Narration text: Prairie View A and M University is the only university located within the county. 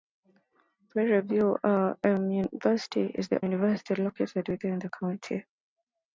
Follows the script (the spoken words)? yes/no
no